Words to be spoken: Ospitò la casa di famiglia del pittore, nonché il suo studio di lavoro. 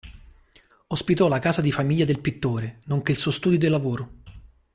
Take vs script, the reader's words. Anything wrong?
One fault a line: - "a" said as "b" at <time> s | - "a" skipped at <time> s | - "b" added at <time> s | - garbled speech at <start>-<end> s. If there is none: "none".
none